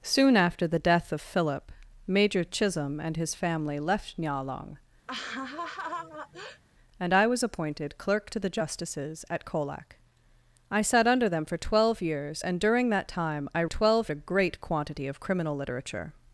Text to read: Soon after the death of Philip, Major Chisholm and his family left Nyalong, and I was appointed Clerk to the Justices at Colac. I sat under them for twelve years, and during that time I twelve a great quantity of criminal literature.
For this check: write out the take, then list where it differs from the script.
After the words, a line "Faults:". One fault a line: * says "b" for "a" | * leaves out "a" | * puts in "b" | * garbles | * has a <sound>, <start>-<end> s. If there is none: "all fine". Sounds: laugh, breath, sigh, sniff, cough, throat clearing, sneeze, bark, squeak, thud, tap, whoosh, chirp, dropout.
Soon after the death of Philip, Major Chisholm and his family left Nyalong, and I was appointed Clerk to the Justices at Colac. I sat under them for twelve years, and during that time I twelve a great quantity of criminal literature.
Faults:
* has a laugh, 5.1-6.6 s